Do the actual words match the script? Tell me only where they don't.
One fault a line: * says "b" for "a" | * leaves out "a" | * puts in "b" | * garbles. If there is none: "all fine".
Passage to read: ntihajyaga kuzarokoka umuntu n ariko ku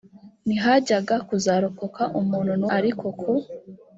all fine